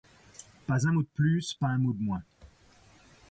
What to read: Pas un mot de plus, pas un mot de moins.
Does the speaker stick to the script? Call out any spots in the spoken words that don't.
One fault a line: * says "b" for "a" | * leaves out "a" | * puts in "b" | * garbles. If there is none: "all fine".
all fine